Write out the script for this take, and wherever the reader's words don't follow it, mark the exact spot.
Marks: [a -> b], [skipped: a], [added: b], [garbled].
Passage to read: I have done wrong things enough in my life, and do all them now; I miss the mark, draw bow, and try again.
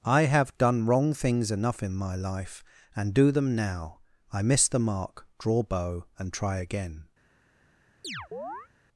I have done wrong things enough in my life, and do [skipped: all] them now; I miss the mark, draw bow, and try again.